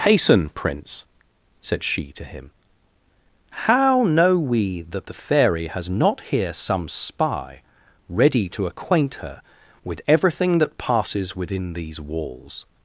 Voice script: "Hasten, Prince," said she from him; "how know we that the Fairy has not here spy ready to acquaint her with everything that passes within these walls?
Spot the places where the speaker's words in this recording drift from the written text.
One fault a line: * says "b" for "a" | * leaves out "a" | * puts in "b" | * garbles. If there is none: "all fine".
* says "to" for "from"
* puts in "some"